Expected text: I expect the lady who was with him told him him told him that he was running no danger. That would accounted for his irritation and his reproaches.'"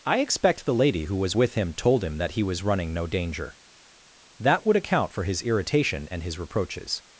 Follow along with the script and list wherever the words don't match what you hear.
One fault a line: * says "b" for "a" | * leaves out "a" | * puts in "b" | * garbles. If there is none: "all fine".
* leaves out "him told him"
* says "account" for "accounted"